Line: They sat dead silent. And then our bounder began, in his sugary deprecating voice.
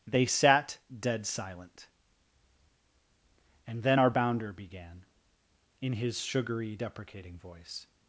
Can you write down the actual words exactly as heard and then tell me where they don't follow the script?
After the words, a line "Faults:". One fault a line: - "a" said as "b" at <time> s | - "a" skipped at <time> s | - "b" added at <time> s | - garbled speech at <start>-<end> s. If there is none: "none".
They sat dead silent. And then our bounder began, in his sugary deprecating voice.
Faults:
none